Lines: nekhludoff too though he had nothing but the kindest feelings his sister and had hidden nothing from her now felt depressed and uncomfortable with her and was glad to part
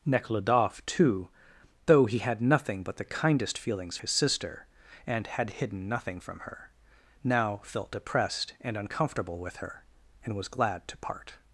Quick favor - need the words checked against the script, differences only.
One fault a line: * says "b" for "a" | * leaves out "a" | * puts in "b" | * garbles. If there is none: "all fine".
all fine